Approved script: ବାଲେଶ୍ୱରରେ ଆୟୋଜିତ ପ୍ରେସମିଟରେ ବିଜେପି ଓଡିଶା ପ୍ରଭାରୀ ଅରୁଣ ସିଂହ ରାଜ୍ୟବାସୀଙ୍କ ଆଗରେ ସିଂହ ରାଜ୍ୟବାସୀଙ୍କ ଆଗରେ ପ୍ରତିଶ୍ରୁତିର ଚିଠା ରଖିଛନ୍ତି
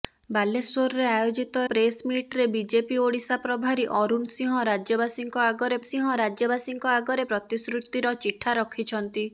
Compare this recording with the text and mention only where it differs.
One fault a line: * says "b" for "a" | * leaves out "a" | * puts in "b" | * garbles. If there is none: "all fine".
all fine